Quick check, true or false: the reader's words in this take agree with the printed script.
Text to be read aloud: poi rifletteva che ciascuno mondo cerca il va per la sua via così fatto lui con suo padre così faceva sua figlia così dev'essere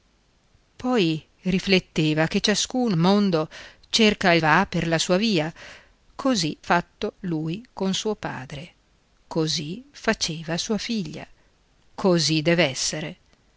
true